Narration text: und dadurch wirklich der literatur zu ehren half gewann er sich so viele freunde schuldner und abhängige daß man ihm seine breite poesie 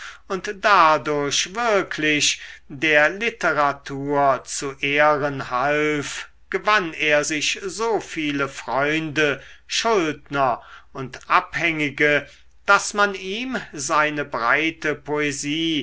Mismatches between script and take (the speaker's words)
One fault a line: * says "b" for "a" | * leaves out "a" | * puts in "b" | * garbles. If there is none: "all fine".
all fine